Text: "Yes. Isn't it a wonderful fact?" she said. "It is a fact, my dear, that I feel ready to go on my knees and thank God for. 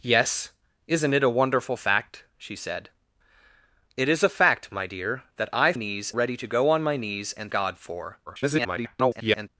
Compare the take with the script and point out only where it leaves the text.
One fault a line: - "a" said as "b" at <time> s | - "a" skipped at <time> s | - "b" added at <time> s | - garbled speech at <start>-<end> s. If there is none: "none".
- "feel" said as "knees" at 5.7 s
- "thank" skipped at 7.5 s
- garbled speech at 8.3-9.5 s